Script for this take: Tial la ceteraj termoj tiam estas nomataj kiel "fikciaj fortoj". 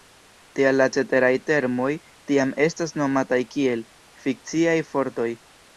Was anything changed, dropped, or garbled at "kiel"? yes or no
no